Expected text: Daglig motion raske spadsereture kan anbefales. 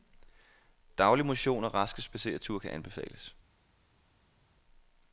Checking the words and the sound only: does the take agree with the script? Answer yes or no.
no